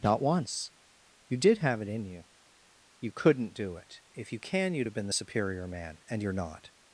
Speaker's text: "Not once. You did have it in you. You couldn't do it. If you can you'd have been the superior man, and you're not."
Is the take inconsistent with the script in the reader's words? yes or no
no